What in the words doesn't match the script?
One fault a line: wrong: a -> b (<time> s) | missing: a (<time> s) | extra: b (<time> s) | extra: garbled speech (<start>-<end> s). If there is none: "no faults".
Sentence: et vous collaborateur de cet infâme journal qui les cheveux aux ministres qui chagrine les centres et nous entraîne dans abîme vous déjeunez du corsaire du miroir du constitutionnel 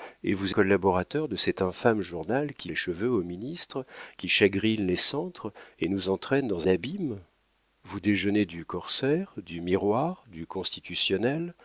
no faults